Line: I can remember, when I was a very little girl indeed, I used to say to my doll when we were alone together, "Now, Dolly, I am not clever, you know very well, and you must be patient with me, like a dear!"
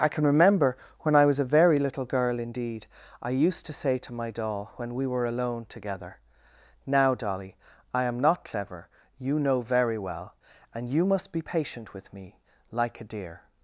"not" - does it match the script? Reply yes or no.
yes